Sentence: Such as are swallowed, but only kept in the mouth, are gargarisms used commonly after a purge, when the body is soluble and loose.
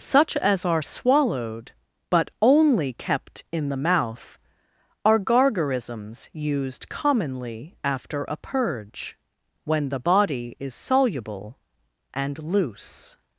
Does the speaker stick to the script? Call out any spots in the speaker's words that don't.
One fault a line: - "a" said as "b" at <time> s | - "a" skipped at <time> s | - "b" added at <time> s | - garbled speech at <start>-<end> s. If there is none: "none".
none